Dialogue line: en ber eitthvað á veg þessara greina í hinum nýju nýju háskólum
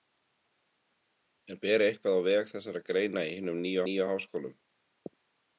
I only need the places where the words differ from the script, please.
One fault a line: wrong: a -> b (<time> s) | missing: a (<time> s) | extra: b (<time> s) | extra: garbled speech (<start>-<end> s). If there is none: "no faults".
no faults